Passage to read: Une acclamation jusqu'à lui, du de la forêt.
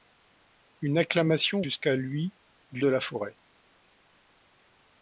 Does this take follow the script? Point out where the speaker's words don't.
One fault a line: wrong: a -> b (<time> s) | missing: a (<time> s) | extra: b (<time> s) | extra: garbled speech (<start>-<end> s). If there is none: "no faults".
no faults